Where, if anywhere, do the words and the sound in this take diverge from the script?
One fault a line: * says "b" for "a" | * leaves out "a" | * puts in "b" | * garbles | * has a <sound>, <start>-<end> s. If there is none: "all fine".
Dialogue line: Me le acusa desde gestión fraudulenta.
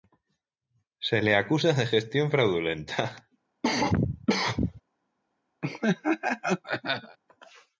* says "Se" for "Me"
* says "de" for "desde"
* has a cough, 3.6-4.8 s
* has a laugh, 5.6-7.2 s